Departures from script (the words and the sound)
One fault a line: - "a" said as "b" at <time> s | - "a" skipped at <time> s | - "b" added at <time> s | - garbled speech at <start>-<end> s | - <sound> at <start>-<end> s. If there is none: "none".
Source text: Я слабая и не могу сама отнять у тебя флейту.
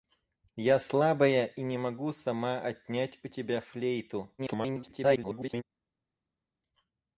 - garbled speech at 4.4-5.6 s